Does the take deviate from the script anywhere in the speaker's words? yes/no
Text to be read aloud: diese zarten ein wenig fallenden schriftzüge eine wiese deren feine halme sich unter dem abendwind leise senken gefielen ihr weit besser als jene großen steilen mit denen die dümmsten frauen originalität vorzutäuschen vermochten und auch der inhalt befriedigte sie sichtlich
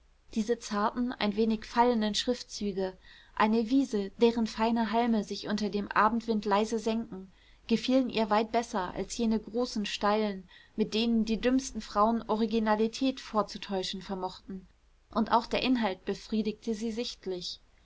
no